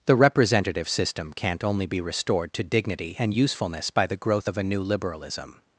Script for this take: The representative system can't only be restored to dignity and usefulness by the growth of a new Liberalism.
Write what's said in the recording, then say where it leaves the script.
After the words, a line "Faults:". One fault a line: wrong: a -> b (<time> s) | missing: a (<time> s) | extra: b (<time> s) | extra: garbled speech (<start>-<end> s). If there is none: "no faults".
The representative system can't only be restored to dignity and usefulness by the growth of a new Liberalism.
Faults:
no faults